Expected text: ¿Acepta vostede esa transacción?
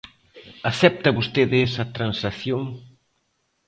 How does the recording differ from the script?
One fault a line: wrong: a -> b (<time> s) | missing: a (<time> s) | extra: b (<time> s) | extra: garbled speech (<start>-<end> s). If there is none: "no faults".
no faults